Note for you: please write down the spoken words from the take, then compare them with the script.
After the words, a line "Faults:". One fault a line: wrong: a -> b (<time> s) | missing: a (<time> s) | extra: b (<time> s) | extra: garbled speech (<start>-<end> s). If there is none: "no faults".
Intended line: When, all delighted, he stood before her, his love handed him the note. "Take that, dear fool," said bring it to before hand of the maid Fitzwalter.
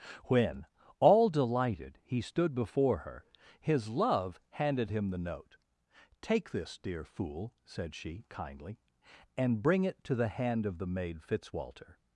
When, all delighted, he stood before her, his love handed him the note. "Take this, dear fool," said she, kindly, "and bring it to the hand of the maid Fitzwalter.
Faults:
wrong: that -> this (6.5 s)
extra: she kindly and (7.9 s)
wrong: before -> the (10.2 s)